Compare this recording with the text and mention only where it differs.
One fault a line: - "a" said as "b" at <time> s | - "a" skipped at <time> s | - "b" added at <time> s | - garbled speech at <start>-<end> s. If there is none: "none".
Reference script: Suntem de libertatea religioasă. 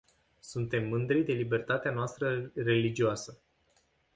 - "mândri" added at 0.9 s
- "noastră" added at 1.9 s